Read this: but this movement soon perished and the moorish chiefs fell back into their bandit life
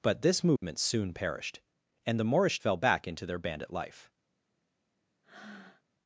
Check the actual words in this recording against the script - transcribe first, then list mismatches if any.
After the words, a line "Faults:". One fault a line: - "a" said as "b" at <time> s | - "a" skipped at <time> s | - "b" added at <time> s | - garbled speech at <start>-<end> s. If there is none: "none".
but this movement soon perished and the moorish fell back into their bandit life
Faults:
- "chiefs" skipped at 2.6 s